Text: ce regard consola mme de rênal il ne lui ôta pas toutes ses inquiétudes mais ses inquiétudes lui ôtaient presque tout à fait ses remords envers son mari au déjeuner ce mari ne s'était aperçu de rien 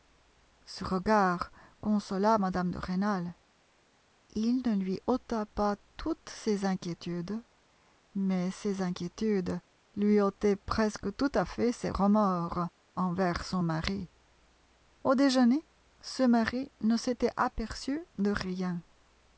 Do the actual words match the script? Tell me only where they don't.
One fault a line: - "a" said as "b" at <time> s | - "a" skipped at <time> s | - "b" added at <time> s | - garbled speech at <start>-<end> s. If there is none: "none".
none